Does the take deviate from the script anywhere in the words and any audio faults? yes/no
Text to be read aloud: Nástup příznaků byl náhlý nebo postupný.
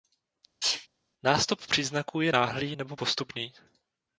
yes